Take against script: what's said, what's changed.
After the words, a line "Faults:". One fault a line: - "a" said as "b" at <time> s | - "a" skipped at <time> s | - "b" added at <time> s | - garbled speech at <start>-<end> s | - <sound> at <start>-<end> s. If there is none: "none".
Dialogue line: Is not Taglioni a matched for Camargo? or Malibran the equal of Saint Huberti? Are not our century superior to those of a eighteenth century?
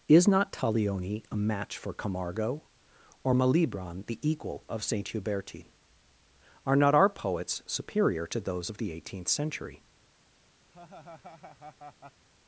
Is not Taglioni a match for Camargo? or Malibran the equal of Saint Huberti? Are not our poets superior to those of the eighteenth century?
Faults:
- "matched" said as "match" at 1.4 s
- "century" said as "poets" at 7.1 s
- "a" said as "the" at 8.8 s
- laugh at 10.7-12.2 s